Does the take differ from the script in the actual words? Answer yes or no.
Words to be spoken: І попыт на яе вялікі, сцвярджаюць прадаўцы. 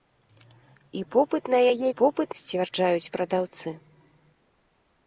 yes